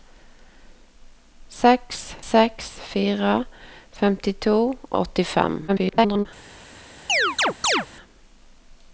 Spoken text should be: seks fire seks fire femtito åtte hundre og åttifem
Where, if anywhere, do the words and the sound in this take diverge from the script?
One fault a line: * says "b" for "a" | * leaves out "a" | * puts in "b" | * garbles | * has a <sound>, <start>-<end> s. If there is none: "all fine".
* leaves out "fire"
* leaves out "åtte hundre"
* garbles
* has a chirp, 7.1-7.9 s